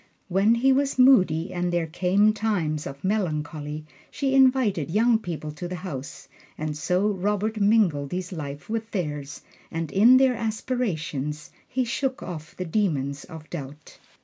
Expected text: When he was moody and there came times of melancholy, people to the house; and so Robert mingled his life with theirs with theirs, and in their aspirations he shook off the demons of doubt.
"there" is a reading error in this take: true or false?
false